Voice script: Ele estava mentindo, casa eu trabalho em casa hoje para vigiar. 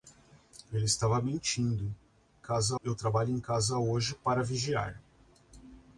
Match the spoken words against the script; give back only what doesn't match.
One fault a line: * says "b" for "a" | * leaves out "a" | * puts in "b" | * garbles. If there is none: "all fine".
all fine